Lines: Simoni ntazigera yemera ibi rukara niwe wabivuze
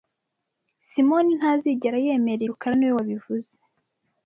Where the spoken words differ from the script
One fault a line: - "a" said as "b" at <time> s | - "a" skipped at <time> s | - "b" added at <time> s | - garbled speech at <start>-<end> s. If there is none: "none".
- "ibi" skipped at 2.4 s